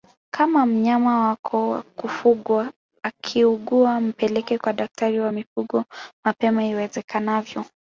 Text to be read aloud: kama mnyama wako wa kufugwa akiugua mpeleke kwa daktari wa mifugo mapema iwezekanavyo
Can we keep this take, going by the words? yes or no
yes